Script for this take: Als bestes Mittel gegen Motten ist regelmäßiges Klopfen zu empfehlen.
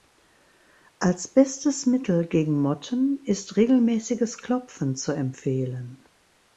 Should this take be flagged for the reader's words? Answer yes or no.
no